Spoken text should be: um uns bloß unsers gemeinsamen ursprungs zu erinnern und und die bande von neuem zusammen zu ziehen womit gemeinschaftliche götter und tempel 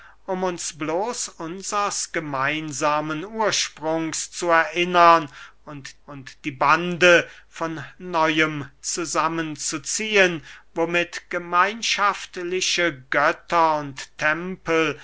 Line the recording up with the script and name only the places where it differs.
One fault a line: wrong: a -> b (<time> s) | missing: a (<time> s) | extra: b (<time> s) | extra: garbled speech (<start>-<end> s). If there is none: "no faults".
no faults